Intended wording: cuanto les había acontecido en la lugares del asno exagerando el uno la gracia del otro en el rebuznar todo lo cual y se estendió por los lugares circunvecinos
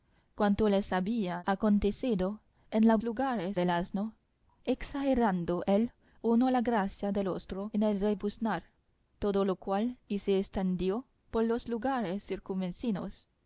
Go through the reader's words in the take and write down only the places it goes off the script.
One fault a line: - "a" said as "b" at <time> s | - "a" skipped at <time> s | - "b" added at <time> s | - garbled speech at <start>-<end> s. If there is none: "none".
none